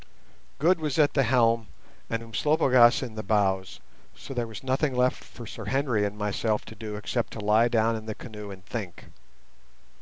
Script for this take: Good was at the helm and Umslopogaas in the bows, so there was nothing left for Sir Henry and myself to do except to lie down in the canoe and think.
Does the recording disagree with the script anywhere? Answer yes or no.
no